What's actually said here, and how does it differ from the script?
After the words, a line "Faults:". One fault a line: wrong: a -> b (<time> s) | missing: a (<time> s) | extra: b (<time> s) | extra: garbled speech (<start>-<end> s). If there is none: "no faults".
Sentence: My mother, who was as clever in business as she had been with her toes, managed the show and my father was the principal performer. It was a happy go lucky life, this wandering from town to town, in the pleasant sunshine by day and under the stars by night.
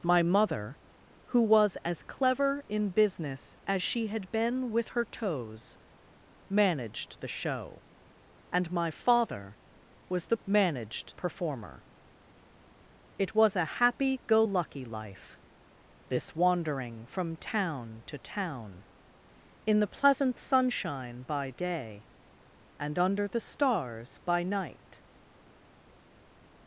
My mother, who was as clever in business as she had been with her toes, managed the show and my father was the managed performer. It was a happy go lucky life, this wandering from town to town, in the pleasant sunshine by day and under the stars by night.
Faults:
wrong: principal -> managed (10.5 s)